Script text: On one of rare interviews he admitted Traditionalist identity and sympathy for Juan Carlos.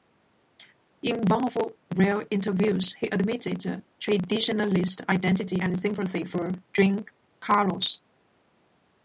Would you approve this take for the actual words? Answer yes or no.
no